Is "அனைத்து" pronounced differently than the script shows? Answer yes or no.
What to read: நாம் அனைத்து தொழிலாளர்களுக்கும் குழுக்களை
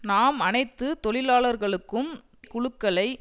no